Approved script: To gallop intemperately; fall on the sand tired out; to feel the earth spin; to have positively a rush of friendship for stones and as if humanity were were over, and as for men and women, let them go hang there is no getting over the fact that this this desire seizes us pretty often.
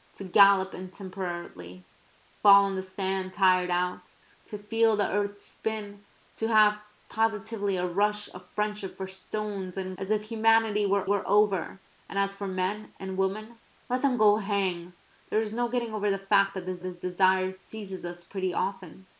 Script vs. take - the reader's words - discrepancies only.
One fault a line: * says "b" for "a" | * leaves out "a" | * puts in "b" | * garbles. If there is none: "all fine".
all fine